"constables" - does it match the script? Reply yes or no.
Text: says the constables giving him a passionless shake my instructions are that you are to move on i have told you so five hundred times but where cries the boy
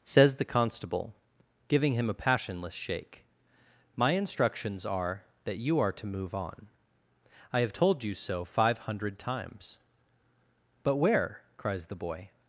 no